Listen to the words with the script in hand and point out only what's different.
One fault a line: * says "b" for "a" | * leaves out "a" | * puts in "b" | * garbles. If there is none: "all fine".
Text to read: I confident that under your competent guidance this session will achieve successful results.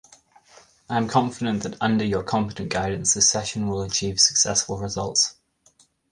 * puts in "am"